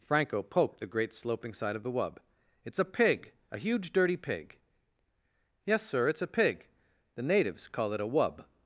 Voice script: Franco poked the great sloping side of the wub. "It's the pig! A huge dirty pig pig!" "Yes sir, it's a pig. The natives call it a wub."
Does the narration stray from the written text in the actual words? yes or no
yes